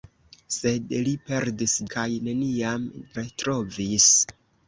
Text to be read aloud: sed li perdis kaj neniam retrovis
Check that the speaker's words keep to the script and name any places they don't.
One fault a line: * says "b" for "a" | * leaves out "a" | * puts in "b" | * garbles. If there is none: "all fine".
all fine